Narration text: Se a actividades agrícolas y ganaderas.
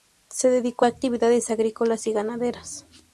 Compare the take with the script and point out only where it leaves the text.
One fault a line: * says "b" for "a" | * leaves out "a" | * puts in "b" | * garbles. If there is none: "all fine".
* puts in "dedicó"